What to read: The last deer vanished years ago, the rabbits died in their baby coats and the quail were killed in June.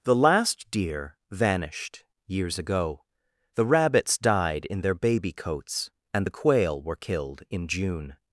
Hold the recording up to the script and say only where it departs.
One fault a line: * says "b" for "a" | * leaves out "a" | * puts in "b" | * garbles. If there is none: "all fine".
all fine